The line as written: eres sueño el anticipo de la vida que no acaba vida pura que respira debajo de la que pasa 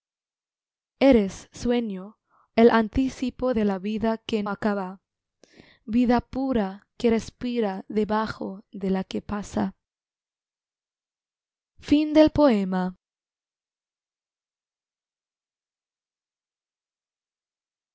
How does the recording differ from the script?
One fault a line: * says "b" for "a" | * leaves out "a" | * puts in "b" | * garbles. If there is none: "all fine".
* leaves out "no"